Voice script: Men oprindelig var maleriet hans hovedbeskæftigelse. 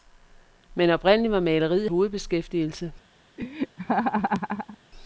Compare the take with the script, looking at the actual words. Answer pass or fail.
fail